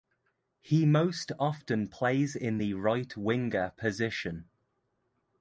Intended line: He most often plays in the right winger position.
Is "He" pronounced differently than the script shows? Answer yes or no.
no